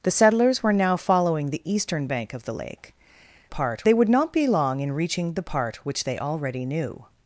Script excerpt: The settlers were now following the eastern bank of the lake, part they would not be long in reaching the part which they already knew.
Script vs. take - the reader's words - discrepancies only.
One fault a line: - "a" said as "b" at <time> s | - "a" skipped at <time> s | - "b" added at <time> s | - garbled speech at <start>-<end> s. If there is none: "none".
none